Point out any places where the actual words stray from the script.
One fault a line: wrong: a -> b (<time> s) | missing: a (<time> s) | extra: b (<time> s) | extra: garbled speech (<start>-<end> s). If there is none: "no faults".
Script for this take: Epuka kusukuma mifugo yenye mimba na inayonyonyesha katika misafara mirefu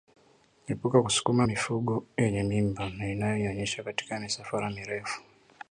no faults